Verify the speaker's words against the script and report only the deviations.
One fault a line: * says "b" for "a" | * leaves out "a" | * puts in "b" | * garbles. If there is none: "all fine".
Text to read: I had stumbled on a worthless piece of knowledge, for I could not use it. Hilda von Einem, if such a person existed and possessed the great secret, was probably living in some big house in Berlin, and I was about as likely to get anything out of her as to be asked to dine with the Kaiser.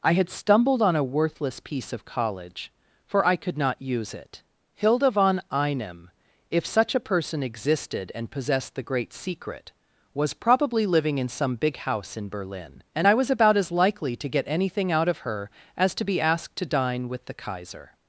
* says "college" for "knowledge"